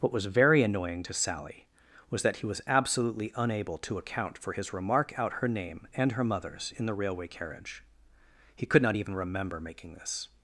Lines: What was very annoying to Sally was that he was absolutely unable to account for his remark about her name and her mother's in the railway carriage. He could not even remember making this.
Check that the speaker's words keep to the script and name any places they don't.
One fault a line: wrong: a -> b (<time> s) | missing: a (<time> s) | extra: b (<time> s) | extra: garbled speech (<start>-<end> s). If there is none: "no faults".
wrong: about -> out (5.2 s)